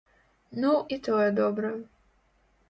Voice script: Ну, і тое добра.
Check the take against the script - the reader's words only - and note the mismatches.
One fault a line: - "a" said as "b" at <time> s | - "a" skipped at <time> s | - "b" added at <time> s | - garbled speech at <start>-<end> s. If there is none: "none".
none